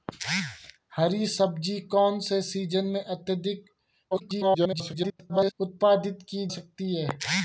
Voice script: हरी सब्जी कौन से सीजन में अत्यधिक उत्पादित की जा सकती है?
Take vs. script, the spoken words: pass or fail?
fail